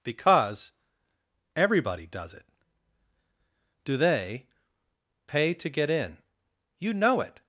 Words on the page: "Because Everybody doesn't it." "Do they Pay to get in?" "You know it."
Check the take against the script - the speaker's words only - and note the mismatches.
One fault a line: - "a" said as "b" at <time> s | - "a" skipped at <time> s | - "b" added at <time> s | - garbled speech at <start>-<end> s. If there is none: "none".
- "doesn't" said as "does" at 2.1 s